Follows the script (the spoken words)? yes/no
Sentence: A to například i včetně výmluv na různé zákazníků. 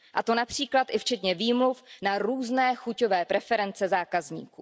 no